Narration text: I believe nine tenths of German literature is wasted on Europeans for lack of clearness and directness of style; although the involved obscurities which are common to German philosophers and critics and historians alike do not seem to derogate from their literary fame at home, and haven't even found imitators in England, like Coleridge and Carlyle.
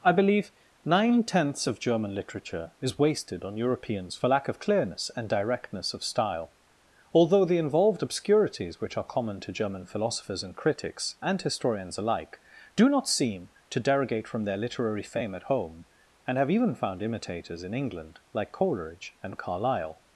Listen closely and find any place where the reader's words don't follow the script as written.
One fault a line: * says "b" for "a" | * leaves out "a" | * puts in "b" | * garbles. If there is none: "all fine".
* says "have" for "haven't"